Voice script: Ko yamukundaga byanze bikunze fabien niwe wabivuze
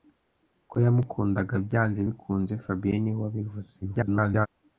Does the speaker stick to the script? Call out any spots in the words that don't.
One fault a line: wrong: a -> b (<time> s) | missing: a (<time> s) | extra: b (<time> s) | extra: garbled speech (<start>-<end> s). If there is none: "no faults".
extra: garbled speech (3.8-4.5 s)